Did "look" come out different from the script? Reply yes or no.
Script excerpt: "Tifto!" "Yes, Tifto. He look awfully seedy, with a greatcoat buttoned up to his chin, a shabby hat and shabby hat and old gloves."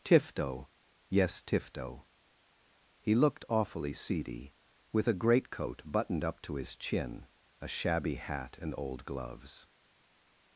yes